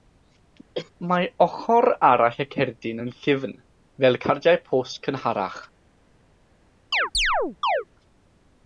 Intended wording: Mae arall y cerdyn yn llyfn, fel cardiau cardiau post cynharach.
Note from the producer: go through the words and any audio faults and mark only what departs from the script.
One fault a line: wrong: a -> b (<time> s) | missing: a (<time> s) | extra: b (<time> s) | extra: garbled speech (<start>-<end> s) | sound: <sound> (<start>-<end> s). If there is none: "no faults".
sound: cough (0.7-0.9 s)
extra: ochr (1.4 s)
missing: cardiau (4.6 s)
sound: chirp (6.9-7.8 s)